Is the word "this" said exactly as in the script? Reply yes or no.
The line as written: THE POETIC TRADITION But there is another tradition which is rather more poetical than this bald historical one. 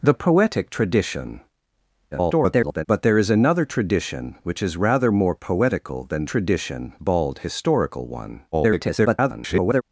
no